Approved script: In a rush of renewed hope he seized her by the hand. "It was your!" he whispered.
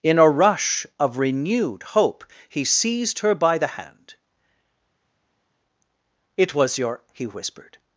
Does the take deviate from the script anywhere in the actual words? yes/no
no